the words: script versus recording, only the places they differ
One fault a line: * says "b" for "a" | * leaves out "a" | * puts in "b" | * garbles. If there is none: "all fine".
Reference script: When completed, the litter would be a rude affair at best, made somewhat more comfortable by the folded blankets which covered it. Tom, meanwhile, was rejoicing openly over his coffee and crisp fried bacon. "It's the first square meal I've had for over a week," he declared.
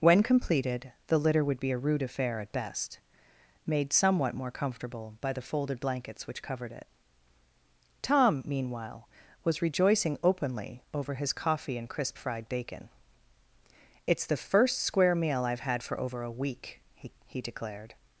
* puts in "he"